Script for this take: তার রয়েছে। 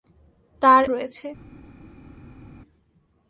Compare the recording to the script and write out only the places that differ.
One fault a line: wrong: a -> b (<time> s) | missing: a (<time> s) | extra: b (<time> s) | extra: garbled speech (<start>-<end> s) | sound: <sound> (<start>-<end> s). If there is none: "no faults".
no faults